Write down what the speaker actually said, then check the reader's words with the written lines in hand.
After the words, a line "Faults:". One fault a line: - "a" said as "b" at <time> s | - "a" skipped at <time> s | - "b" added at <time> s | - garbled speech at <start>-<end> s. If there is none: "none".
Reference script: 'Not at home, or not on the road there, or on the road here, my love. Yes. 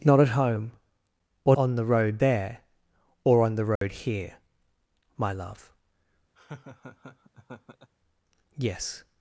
'Not at home, or on the road there, or on the road here, my love. Yes.
Faults:
- "not" skipped at 1.6 s